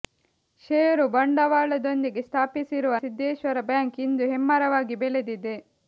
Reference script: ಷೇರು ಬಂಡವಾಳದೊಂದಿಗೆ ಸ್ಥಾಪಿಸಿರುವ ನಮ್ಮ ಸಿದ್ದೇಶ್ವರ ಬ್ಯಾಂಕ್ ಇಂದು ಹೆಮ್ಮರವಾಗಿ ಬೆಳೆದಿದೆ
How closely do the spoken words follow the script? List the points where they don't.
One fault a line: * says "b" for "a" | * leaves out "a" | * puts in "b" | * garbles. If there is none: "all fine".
* leaves out "ನಮ್ಮ"